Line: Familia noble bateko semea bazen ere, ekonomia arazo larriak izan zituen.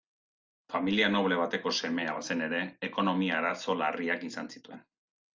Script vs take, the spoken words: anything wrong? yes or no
no